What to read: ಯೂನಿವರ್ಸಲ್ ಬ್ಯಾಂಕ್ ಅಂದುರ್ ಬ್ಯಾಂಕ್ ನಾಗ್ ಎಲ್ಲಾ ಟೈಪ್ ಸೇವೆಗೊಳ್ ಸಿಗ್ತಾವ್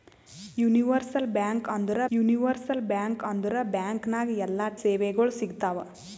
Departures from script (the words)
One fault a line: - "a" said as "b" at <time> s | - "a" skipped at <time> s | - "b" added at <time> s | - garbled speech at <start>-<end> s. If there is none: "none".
- "ಯೂನಿವರ್ಸಲ್" added at 2.1 s
- "ಅಂದುರ್ ಬ್ಯಾಂಕ್" added at 3.2 s
- "ಟೈಪ್" skipped at 4.7 s